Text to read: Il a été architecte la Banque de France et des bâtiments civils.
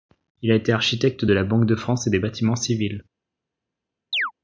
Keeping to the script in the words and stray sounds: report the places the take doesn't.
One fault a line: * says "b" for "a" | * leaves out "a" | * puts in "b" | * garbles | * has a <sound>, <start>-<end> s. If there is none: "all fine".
* puts in "de"
* has a chirp, 4.1-4.3 s